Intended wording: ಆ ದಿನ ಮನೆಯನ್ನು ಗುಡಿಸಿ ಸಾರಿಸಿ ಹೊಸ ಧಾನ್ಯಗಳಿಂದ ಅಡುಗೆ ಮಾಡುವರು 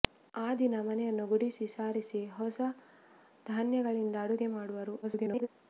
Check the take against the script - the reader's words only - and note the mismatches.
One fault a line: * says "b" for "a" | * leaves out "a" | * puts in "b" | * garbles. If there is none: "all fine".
* garbles